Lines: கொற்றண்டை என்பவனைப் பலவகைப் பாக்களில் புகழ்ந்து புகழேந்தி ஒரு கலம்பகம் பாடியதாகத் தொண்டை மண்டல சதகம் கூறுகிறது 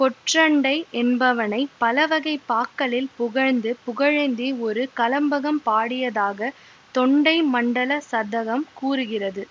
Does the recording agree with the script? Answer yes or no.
yes